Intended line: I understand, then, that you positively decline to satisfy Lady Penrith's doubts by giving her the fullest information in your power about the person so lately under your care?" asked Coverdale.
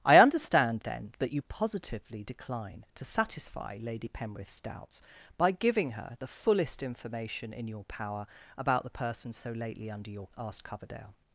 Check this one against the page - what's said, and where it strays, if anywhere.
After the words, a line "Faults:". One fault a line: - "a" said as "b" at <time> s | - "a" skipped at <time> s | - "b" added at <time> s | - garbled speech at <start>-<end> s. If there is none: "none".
I understand, then, that you positively decline to satisfy Lady Penrith's doubts by giving her the fullest information in your power about the person so lately under your?" asked Coverdale.
Faults:
- "care" skipped at 10.3 s